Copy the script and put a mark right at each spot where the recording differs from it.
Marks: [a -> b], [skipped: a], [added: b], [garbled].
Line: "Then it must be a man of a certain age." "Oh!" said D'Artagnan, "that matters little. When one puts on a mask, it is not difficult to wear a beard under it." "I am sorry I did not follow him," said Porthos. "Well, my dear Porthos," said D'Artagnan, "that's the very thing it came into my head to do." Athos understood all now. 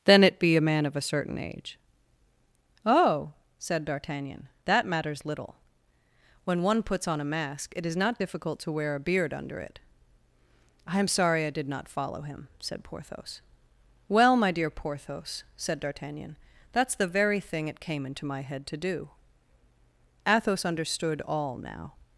"Then it [skipped: must] be a man of a certain age." "Oh!" said D'Artagnan, "that matters little. When one puts on a mask, it is not difficult to wear a beard under it." "I am sorry I did not follow him," said Porthos. "Well, my dear Porthos," said D'Artagnan, "that's the very thing it came into my head to do." Athos understood all now.